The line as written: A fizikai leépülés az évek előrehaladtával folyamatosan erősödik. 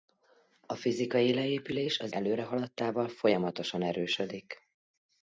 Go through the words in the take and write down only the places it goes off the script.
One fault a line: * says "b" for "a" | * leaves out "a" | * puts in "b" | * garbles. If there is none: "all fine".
* leaves out "évek"